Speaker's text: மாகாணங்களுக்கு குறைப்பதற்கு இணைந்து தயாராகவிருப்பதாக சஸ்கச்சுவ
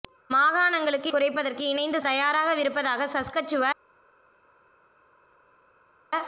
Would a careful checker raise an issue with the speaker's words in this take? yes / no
no